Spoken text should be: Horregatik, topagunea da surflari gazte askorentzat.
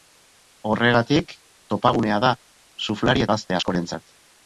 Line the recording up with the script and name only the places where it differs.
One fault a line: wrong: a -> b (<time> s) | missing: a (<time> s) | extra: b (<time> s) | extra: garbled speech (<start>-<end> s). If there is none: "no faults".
no faults